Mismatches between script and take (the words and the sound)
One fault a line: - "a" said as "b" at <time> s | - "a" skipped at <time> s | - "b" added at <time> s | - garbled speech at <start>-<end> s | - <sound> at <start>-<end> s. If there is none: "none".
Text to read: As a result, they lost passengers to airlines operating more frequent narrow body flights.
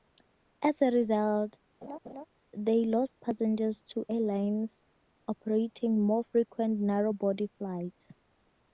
- laugh at 1.8-2.3 s